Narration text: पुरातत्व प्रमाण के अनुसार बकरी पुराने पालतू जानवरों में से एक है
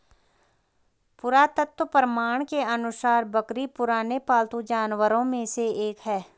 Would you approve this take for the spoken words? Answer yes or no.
yes